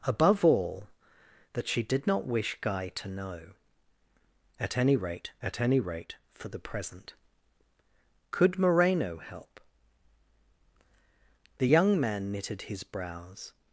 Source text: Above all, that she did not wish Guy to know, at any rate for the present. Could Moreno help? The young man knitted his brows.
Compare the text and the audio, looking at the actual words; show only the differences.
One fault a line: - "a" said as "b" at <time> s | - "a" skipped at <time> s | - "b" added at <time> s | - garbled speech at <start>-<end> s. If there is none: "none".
- "at any rate" added at 5.4 s